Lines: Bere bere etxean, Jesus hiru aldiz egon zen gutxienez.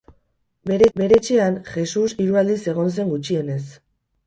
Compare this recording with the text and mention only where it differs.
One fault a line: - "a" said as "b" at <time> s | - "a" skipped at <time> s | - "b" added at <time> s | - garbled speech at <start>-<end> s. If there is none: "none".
none